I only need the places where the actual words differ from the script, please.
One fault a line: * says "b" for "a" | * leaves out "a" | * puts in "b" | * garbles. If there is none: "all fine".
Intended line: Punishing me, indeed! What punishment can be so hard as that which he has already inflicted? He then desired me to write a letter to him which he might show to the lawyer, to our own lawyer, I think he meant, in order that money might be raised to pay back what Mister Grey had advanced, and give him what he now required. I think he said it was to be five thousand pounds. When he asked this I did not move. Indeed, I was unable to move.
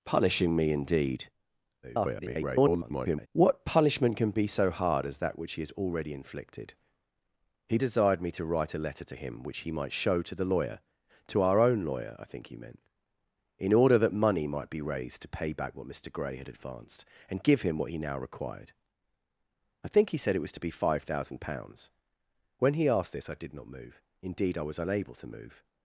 * garbles
* leaves out "then"